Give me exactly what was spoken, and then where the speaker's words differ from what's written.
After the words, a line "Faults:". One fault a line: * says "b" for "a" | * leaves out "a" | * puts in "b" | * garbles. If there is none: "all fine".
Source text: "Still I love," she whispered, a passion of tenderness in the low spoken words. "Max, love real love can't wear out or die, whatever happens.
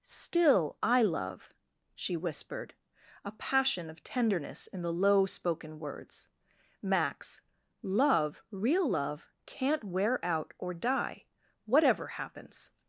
"Still I love," she whispered, a passion of tenderness in the low spoken words. "Max, love real love can't wear out or die, whatever happens.
Faults:
all fine